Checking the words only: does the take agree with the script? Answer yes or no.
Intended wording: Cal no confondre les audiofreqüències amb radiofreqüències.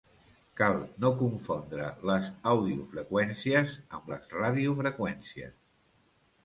no